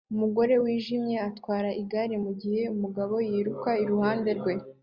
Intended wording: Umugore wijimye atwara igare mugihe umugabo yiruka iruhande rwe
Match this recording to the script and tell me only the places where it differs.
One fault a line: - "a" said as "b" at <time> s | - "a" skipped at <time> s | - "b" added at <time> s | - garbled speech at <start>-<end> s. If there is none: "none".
none